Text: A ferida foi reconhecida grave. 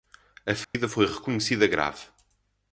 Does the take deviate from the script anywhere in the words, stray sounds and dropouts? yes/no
yes